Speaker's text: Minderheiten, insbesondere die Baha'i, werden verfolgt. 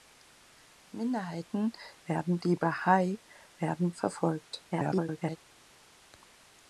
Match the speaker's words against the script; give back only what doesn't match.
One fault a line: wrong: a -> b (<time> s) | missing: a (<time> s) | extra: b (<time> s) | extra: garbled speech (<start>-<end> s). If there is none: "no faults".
wrong: insbesondere -> werden (2.0 s)
extra: garbled speech (4.7-5.4 s)